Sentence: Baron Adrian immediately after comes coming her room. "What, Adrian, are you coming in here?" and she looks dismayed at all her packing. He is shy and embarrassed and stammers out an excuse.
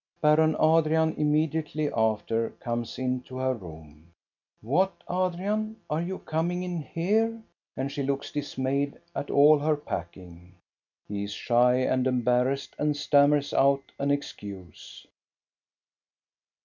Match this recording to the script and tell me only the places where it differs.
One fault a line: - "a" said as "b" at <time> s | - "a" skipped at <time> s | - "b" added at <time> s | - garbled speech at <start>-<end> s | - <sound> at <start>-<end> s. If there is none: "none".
- "coming" said as "into" at 3.0 s